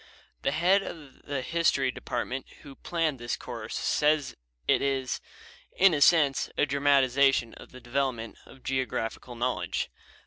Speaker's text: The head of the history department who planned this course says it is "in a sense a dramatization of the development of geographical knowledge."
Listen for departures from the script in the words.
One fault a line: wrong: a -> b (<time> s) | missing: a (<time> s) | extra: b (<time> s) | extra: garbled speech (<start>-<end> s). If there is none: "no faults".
no faults